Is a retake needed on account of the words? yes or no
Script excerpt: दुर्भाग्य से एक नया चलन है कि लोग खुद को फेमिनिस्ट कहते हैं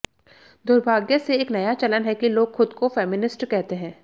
no